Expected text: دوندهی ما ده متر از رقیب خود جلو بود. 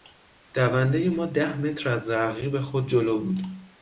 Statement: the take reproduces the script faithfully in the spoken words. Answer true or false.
true